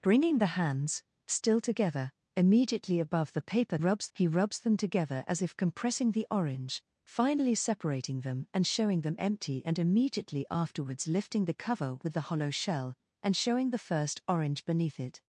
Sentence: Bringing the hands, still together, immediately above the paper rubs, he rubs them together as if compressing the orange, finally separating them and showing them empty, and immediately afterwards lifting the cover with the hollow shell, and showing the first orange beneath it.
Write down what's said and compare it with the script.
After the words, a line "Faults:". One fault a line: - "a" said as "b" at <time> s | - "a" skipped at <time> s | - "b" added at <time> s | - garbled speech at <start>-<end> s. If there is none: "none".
Bringing the hands, still together, immediately above the paper rubs, he rubs them together as if compressing the orange, finally separating them and showing them empty, and immediately afterwards lifting the cover with the hollow shell, and showing the first orange beneath it.
Faults:
none